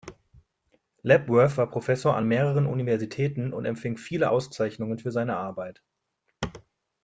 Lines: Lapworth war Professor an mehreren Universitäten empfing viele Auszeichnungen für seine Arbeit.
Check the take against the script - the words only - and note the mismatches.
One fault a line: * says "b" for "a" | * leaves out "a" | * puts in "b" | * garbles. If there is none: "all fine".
* puts in "und"